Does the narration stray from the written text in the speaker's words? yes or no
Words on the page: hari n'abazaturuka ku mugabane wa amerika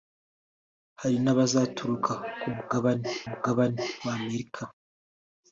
yes